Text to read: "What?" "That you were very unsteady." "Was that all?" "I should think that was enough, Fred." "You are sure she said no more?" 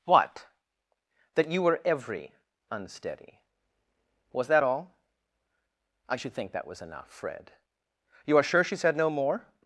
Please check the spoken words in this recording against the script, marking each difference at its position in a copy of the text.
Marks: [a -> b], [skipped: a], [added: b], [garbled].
"What?" "That you were [very -> every] unsteady." "Was that all?" "I should think that was enough, Fred." "You are sure she said no more?"